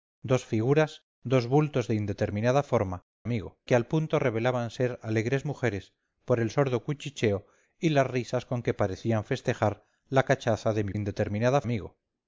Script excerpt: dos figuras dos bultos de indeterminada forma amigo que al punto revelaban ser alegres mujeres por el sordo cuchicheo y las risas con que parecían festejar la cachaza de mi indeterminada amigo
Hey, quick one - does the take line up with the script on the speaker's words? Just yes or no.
yes